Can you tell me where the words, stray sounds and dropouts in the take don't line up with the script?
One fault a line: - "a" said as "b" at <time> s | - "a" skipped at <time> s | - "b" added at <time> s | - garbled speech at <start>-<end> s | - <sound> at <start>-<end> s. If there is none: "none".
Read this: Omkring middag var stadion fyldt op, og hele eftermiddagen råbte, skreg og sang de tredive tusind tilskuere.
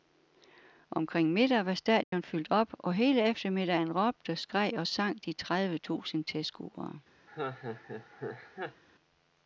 - dropout at 2.0-2.1 s
- laugh at 7.3-8.8 s